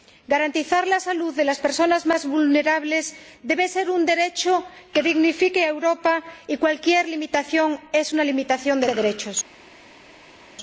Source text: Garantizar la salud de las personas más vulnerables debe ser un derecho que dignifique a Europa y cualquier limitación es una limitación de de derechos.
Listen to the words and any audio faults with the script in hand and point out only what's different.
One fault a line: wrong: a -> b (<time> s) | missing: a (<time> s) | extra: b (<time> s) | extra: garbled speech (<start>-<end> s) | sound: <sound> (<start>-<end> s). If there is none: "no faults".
no faults